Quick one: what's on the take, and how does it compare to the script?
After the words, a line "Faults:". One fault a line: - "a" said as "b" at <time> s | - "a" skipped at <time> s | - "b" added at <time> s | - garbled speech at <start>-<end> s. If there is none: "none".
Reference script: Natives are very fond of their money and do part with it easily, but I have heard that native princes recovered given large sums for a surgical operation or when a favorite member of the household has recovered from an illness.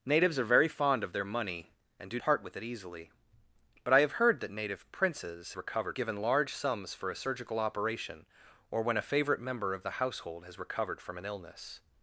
Natives are very fond of their money and do part with it easily, but I have heard that native princes recovered given large sums for a surgical operation or when a favorite member of the household has recovered from an illness.
Faults:
none